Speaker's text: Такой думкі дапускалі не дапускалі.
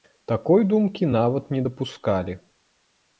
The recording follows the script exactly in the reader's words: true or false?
false